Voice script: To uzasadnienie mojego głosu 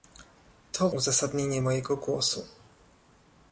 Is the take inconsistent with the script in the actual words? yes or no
no